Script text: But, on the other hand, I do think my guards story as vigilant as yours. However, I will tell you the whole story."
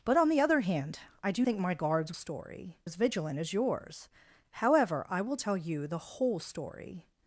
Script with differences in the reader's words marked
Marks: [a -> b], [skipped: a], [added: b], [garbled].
But, on the other hand, I do think my guards story as vigilant as yours. However, I will tell you the whole story."